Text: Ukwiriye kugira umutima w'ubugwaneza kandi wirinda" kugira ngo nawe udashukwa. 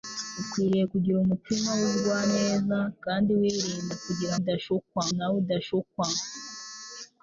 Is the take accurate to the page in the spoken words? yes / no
no